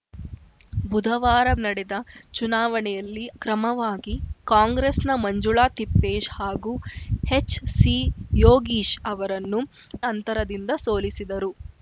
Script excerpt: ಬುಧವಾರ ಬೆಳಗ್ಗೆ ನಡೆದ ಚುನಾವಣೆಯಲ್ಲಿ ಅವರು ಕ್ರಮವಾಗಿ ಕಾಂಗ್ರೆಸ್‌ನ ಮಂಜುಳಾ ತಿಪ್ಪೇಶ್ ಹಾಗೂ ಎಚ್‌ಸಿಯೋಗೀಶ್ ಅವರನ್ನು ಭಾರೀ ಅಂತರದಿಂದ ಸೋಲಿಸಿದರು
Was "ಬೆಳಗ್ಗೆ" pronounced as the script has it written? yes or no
no